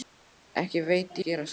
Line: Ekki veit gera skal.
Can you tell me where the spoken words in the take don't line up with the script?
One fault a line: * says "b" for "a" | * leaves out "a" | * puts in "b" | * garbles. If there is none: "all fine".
all fine